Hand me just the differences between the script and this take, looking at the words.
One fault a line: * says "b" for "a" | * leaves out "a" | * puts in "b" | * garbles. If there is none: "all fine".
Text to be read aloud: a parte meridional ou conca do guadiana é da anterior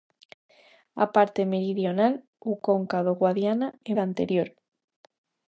all fine